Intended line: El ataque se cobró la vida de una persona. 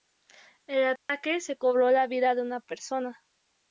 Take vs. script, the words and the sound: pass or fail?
fail